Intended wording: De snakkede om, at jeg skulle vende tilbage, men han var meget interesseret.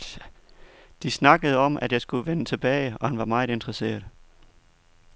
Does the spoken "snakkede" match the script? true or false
true